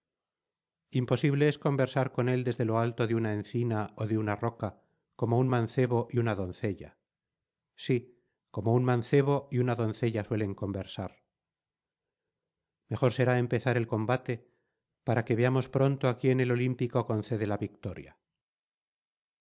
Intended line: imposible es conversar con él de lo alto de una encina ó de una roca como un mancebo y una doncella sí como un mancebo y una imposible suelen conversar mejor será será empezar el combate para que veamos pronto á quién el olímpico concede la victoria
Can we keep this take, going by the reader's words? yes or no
no